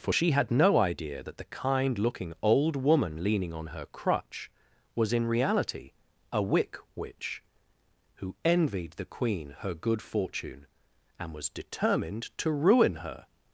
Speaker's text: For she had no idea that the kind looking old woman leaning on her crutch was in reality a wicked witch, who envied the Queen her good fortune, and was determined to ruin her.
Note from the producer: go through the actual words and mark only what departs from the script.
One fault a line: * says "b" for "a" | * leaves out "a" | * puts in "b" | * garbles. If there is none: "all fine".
* says "wick" for "wicked"